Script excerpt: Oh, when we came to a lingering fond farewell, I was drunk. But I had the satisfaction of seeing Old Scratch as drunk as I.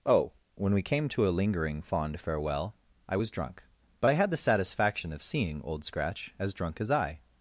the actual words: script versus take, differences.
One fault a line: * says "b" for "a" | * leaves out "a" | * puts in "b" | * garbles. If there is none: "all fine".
all fine